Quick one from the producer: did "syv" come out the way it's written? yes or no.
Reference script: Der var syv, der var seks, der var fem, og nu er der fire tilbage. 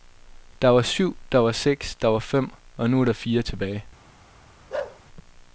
yes